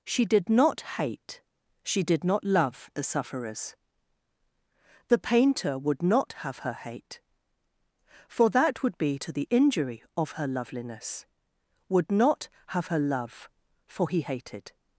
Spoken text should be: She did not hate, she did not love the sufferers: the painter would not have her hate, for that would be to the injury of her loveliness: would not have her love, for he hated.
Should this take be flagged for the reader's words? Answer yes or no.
no